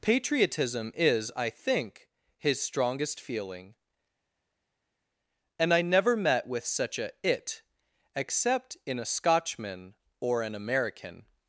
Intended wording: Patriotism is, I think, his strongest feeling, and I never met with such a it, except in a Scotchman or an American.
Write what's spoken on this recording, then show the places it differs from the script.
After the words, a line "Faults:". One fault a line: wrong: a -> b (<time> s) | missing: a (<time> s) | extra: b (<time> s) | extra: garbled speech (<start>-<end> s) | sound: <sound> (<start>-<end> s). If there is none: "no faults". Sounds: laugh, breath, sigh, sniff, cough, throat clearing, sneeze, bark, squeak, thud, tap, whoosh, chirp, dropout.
Patriotism is, I think, his strongest feeling, and I never met with such a it, except in a Scotchman or an American.
Faults:
no faults